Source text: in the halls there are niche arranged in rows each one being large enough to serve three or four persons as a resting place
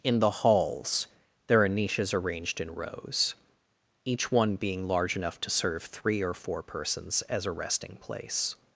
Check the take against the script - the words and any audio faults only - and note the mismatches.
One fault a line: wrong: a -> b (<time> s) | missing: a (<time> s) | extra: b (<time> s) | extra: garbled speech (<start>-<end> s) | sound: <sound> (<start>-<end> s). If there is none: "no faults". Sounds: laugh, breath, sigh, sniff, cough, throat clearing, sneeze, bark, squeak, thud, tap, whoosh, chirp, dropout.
wrong: niche -> niches (1.7 s)